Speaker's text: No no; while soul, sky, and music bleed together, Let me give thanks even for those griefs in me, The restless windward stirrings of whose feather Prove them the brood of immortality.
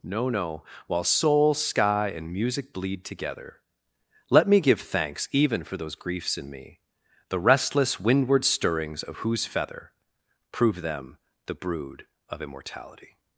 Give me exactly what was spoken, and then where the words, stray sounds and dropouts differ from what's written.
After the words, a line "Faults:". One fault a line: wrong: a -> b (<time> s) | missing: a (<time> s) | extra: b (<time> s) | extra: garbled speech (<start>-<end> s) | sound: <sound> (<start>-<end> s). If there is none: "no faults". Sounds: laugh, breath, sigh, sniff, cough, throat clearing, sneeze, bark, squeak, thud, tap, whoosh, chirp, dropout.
No no; while soul, sky, and music bleed together, Let me give thanks even for those griefs in me, The restless windward stirrings of whose feather Prove them the brood of immortality.
Faults:
no faults